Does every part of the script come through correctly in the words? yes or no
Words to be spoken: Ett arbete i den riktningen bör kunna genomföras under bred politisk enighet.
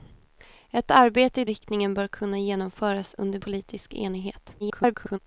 no